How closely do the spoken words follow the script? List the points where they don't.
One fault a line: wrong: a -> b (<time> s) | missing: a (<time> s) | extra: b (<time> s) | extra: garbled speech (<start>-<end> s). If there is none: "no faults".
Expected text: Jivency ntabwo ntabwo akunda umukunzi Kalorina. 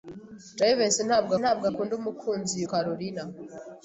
no faults